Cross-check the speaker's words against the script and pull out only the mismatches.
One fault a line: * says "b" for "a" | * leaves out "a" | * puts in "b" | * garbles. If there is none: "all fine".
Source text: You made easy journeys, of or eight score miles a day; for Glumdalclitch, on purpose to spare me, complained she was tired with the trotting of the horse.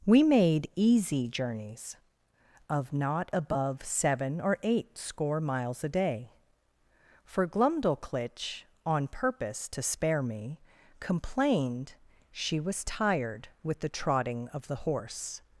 * says "We" for "You"
* puts in "not above seven"